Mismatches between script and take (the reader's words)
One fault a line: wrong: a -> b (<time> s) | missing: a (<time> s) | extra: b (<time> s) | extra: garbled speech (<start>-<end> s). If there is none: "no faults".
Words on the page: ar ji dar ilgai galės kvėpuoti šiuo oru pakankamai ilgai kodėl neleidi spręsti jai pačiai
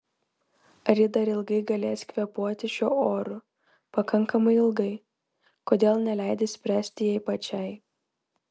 no faults